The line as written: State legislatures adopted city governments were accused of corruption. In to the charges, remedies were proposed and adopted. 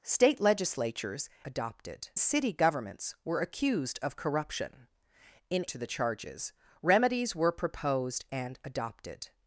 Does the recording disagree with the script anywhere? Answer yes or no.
no